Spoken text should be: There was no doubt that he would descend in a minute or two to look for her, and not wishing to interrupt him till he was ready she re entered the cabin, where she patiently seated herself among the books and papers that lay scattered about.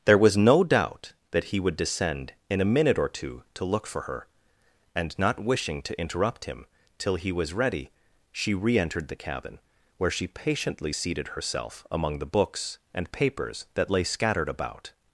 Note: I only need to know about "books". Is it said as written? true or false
true